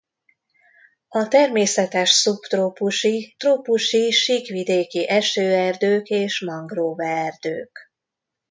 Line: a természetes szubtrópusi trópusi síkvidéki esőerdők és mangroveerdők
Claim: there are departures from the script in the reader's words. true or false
false